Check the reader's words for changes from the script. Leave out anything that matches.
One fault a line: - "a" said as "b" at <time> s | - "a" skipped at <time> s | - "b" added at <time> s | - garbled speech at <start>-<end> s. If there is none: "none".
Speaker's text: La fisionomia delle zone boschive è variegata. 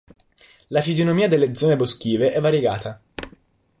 none